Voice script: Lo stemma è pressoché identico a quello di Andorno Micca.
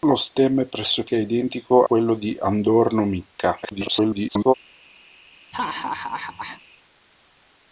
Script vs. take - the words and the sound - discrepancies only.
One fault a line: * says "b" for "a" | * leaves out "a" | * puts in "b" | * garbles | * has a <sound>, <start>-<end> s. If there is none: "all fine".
* leaves out "a"
* garbles
* has a laugh, 5.5-6.6 s